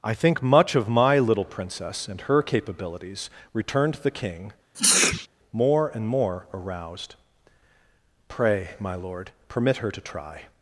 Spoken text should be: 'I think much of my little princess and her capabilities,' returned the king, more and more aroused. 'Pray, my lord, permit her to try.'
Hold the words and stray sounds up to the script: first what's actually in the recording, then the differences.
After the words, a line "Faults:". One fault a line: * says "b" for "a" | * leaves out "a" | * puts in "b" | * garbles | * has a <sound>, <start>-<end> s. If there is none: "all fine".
'I think much of my little princess and her capabilities,' returned the king, more and more aroused. 'Pray, my lord, permit her to try.'
Faults:
* has a sneeze, 4.7-5.3 s